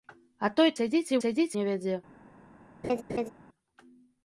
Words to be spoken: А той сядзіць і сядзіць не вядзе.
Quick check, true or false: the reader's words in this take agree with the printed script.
true